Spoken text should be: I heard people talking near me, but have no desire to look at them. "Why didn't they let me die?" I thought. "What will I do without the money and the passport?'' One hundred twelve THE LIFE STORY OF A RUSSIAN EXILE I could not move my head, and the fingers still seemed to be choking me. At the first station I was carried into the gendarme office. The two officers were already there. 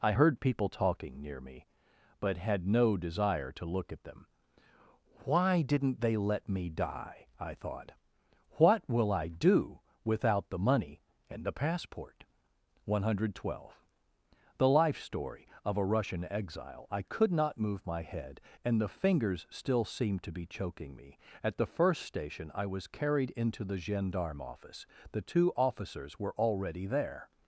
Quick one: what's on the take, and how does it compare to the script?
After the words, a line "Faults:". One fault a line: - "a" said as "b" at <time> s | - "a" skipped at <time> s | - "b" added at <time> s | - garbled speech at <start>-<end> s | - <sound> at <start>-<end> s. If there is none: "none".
I heard people talking near me, but had no desire to look at them. "Why didn't they let me die?" I thought. "What will I do without the money and the passport?'' One hundred twelve THE LIFE STORY OF A RUSSIAN EXILE I could not move my head, and the fingers still seemed to be choking me. At the first station I was carried into the gendarme office. The two officers were already there.
Faults:
- "have" said as "had" at 2.4 s